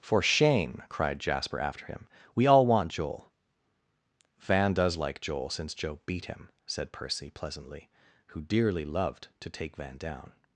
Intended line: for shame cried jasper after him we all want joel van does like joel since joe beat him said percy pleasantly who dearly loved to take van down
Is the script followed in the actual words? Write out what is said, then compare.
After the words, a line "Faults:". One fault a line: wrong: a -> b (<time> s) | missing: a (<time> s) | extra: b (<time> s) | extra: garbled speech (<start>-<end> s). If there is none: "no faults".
for shame cried jasper after him we all want joel van does like joel since joe beat him said percy pleasantly who dearly loved to take van down
Faults:
no faults